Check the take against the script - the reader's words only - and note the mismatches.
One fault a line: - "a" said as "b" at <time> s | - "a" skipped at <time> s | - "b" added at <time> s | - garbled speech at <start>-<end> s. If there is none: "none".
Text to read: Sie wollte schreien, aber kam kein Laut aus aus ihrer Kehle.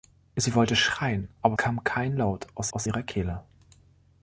none